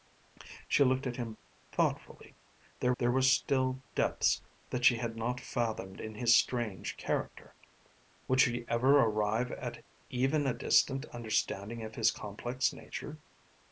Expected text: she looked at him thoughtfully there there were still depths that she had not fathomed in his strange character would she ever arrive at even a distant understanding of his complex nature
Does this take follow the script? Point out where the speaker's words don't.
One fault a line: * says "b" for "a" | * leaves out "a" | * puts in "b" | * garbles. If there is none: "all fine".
all fine